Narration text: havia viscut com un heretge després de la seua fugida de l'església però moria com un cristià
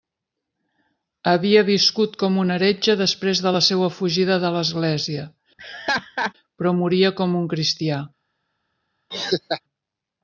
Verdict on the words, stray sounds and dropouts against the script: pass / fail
fail